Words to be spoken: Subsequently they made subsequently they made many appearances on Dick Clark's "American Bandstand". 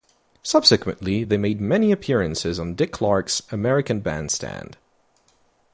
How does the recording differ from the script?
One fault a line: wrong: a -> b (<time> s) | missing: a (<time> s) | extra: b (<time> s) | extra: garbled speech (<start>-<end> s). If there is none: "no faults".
missing: subsequently they made (1.6 s)